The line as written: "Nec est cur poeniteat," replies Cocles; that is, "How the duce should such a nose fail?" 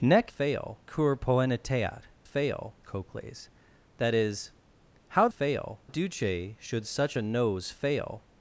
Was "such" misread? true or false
false